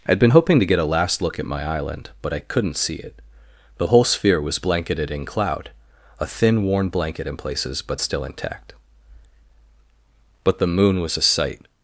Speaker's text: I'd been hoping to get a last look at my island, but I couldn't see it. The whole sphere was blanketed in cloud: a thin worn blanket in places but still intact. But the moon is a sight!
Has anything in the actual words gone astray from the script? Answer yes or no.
yes